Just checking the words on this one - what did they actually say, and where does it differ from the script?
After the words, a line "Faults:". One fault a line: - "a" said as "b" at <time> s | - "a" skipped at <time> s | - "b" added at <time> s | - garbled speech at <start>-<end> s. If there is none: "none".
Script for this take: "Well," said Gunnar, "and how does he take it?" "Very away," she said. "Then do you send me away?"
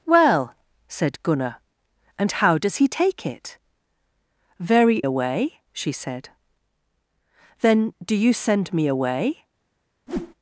"Well," said Gunnar, "and how does he take it?" "Very away," she said. "Then do you send me away?"
Faults:
none